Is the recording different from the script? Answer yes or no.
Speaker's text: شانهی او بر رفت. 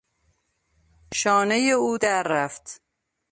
yes